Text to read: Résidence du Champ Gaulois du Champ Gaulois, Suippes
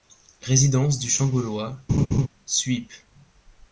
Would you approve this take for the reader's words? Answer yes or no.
no